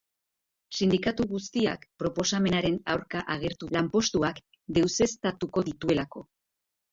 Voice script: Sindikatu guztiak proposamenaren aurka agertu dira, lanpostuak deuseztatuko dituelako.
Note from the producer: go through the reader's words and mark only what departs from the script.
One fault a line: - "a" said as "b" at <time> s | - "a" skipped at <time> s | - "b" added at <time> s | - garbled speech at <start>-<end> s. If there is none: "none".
- "dira" skipped at 3.7 s